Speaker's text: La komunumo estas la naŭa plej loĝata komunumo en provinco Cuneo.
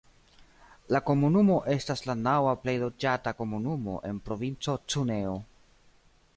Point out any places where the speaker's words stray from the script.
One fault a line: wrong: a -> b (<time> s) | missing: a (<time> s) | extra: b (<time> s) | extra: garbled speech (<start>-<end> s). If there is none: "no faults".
no faults